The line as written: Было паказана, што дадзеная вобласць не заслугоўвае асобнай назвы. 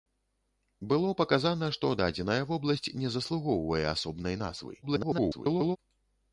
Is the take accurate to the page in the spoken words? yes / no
no